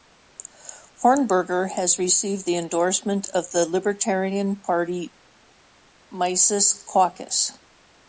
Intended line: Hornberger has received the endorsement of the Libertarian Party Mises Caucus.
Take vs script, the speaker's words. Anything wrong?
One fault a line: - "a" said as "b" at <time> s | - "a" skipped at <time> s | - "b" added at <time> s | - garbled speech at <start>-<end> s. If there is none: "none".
none